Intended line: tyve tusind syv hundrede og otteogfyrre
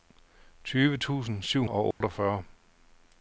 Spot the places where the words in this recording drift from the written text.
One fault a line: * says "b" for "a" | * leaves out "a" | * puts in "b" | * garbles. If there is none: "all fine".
* leaves out "hundrede"